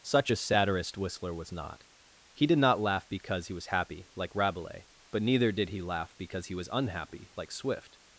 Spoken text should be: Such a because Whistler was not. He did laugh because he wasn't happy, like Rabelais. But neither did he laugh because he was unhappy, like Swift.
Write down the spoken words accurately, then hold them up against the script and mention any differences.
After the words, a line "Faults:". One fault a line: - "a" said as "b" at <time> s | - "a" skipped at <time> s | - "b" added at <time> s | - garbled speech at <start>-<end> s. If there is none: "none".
Such a satirist Whistler was not. He did not laugh because he was happy, like Rabelais. But neither did he laugh because he was unhappy, like Swift.
Faults:
- "because" said as "satirist" at 0.4 s
- "not" added at 2.6 s
- "wasn't" said as "was" at 3.5 s